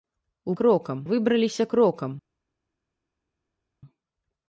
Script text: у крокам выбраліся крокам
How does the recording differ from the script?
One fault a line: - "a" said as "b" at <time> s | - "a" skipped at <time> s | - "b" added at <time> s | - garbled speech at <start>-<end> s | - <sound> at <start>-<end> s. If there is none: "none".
none